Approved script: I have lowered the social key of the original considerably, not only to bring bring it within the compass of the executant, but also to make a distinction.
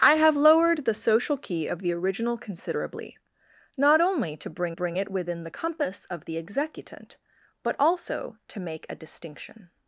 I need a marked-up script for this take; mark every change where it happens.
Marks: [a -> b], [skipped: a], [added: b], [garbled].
I have lowered the social key of the original considerably, not only to bring bring it within the compass of the executant, but also to make a distinction.